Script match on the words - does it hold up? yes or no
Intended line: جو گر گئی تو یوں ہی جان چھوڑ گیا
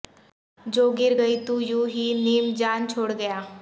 no